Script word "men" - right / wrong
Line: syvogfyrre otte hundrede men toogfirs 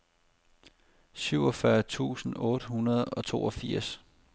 wrong